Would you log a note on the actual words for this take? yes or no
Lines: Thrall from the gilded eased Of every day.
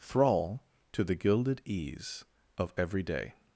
yes